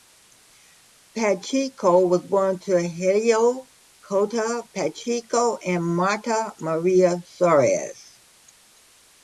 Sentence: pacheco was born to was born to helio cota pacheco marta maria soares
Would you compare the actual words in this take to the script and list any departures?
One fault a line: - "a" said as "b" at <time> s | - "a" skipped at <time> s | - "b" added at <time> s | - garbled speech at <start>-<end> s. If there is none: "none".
- "was born to" skipped at 2.8 s
- "and" added at 5.6 s